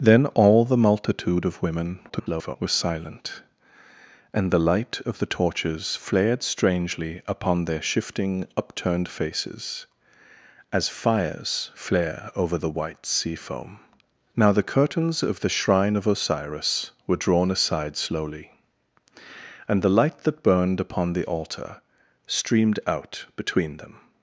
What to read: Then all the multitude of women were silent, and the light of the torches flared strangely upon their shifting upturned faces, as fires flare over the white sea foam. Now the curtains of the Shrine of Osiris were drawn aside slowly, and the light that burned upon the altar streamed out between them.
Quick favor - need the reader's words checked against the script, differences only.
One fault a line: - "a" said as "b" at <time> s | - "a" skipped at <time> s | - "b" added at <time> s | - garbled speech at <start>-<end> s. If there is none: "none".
- garbled speech at 2.1-2.6 s